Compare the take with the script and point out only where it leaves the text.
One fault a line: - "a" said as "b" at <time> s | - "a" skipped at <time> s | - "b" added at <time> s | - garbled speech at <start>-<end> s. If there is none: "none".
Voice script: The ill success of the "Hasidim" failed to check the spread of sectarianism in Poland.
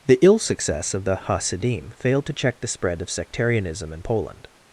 none